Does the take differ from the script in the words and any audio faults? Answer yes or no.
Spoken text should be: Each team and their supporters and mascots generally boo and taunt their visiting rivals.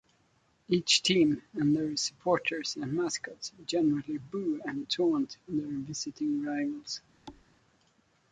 yes